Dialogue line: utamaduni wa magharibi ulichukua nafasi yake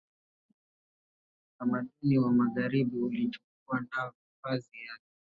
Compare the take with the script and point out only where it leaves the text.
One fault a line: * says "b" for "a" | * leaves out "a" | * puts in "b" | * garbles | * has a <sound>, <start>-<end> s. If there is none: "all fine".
all fine